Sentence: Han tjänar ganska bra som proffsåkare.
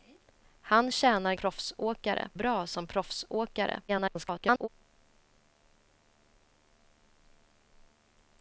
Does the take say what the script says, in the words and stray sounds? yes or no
no